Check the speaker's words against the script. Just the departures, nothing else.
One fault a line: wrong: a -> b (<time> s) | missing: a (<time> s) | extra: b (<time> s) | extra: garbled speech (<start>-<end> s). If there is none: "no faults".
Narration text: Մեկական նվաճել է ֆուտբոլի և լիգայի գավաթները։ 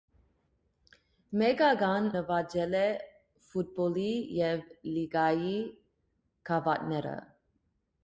no faults